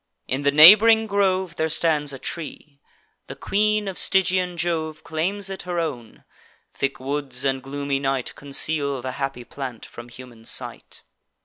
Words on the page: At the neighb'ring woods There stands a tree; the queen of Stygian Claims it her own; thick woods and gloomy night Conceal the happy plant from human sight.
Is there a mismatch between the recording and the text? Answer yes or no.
yes